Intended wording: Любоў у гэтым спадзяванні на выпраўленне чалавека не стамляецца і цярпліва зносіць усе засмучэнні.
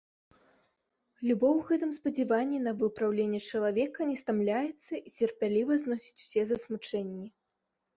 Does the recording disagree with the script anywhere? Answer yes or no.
no